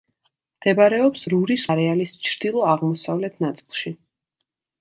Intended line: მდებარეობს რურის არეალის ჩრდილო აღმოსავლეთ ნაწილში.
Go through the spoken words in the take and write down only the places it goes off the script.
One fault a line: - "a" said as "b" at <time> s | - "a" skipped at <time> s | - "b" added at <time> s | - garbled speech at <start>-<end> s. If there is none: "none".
none